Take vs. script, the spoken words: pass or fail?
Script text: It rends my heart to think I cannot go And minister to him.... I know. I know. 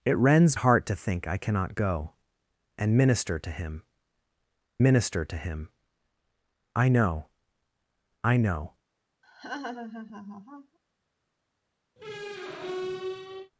fail